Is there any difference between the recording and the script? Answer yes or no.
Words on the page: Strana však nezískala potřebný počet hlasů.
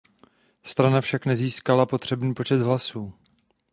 no